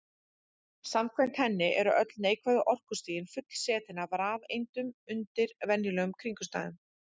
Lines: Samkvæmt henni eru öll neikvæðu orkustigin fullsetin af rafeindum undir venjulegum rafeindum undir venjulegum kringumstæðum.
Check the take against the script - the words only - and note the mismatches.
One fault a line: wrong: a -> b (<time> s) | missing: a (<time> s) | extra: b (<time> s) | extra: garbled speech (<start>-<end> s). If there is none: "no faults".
missing: rafeindum undir venjulegum (6.2 s)